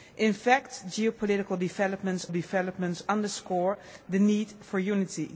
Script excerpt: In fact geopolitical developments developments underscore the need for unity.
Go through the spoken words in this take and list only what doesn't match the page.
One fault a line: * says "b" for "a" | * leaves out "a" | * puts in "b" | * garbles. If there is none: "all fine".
all fine